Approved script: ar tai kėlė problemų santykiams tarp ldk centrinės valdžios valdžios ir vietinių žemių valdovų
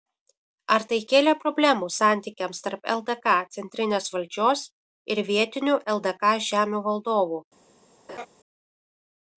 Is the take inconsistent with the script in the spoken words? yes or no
yes